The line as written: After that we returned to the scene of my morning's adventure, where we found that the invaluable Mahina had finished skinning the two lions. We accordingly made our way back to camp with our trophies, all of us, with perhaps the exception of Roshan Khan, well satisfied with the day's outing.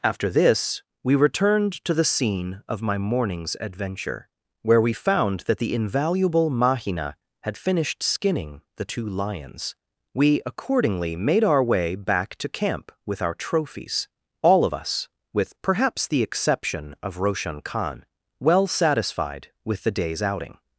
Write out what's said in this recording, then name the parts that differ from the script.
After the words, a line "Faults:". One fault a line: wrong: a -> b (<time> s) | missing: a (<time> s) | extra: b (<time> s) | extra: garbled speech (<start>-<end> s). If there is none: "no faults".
After this we returned to the scene of my morning's adventure, where we found that the invaluable Mahina had finished skinning the two lions. We accordingly made our way back to camp with our trophies, all of us, with perhaps the exception of Roshan Khan, well satisfied with the day's outing.
Faults:
wrong: that -> this (0.3 s)